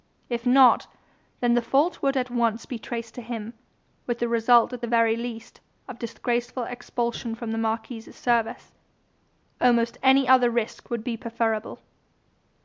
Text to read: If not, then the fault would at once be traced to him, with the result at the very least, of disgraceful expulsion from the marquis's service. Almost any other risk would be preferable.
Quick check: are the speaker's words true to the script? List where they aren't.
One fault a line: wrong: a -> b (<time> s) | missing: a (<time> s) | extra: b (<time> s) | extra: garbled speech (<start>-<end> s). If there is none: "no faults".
no faults